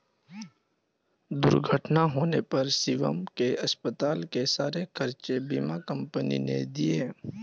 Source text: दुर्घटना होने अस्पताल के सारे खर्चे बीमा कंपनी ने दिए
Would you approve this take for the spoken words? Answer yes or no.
no